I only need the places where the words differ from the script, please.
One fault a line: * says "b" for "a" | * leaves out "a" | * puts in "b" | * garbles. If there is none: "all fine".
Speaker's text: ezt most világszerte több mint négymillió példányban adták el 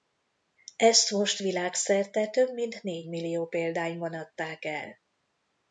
all fine